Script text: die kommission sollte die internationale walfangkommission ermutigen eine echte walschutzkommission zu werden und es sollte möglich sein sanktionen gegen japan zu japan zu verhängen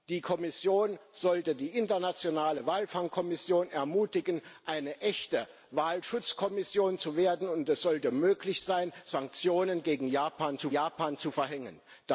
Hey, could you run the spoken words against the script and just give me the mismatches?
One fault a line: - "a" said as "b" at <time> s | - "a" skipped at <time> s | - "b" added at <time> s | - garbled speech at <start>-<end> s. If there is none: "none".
none